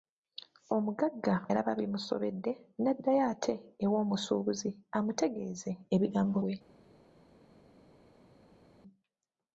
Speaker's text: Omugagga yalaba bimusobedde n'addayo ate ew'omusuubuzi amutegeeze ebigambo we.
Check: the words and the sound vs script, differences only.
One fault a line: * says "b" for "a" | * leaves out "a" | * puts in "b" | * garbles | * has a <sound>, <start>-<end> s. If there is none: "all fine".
all fine